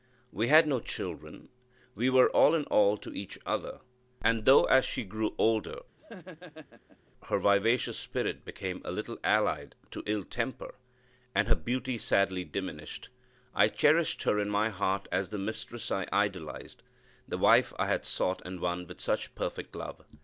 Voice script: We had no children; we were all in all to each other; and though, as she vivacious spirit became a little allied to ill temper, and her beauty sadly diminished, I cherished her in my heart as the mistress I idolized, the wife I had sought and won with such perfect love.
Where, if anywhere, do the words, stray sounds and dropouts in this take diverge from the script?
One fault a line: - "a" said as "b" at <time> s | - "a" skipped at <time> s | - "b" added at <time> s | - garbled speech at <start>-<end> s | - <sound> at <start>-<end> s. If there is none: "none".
- "grew older her" added at 5.0 s
- laugh at 6.0-7.1 s